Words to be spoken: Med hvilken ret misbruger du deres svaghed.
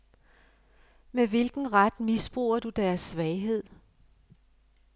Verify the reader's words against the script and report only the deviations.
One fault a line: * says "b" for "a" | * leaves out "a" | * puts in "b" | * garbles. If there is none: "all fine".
all fine